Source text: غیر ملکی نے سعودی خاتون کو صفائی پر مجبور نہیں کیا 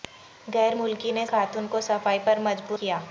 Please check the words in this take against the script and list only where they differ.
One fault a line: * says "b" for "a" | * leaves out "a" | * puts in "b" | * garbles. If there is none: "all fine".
* leaves out "سعودی"
* leaves out "نہیں"